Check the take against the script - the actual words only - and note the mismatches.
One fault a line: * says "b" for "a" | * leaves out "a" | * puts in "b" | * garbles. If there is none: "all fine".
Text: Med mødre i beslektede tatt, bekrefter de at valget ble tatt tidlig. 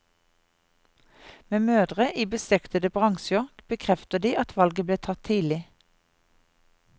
* says "bransjer" for "tatt"